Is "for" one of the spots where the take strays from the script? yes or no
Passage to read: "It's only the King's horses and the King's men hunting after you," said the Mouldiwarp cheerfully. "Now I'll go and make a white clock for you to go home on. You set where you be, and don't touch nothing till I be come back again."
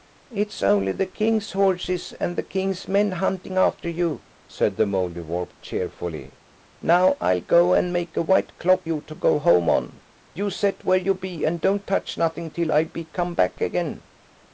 yes